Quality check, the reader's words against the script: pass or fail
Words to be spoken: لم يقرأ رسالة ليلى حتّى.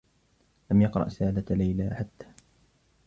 pass